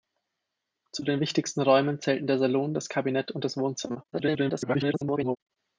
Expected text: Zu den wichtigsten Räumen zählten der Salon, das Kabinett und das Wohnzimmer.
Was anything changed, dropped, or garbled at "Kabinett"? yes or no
no